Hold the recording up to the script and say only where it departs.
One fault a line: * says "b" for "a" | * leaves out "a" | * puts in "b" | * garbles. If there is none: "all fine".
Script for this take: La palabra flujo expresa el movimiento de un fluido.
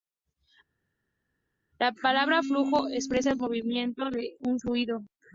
all fine